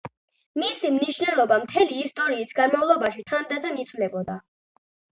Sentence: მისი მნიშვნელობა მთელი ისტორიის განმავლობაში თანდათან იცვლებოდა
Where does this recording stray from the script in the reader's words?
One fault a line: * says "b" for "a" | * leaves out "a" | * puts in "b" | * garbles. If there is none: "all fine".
all fine